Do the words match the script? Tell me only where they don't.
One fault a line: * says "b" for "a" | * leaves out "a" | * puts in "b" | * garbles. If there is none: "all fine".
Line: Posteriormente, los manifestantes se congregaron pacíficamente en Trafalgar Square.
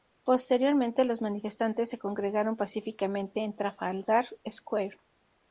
all fine